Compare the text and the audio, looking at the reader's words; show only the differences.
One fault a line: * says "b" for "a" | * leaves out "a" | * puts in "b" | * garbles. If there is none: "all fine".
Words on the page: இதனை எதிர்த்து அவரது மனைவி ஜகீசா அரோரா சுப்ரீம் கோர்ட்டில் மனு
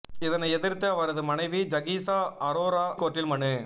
* leaves out "சுப்ரீம்"